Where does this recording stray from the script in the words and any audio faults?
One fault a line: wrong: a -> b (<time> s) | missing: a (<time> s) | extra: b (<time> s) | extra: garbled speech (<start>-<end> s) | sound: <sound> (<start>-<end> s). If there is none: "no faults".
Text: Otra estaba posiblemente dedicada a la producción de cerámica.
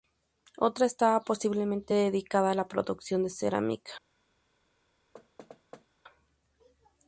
sound: thud (5.1-5.9 s)